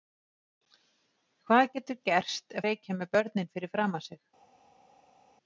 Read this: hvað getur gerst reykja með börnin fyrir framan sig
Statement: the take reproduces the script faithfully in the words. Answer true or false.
true